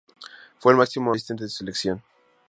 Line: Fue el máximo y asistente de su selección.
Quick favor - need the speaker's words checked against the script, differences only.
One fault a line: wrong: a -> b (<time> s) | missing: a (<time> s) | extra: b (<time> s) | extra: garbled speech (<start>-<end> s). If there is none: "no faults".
no faults